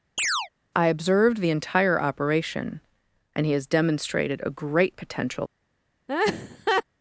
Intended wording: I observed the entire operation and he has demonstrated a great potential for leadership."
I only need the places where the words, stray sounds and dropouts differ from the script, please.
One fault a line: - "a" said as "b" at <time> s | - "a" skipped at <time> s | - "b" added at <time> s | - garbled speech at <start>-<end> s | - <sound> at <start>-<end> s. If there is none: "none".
- chirp at 0.2-0.5 s
- "for leadership" skipped at 5.4 s
- laugh at 6.1-6.8 s